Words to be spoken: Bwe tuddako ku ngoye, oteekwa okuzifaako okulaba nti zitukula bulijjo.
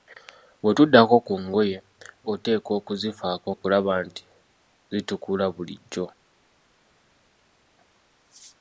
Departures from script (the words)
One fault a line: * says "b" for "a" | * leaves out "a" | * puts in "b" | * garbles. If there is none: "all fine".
all fine